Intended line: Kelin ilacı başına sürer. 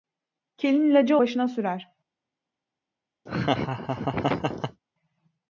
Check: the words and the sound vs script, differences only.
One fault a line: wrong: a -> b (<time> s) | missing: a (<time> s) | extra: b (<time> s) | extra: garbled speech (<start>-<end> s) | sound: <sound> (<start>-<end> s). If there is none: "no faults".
sound: laugh (3.3-4.8 s)